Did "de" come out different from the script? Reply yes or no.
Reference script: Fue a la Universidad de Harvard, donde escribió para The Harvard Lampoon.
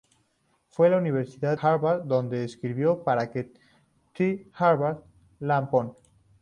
yes